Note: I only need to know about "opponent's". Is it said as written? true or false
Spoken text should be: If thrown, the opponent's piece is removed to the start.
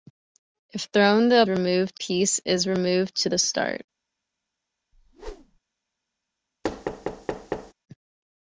false